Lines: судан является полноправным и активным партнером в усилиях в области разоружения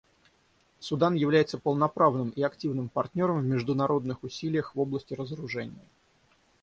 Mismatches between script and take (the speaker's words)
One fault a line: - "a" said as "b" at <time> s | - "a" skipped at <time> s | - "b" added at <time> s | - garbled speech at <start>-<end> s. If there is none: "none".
- "международных" added at 3.4 s